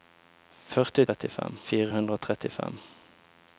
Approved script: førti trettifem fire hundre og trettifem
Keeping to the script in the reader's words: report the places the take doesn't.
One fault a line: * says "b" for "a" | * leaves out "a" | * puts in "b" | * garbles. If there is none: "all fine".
all fine